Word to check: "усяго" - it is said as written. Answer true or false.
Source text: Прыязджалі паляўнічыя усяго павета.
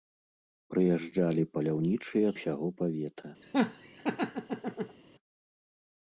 true